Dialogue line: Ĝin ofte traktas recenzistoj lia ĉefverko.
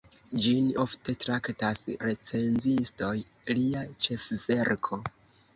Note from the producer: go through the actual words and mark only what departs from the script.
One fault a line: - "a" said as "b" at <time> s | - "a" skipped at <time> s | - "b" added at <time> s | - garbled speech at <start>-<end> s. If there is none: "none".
none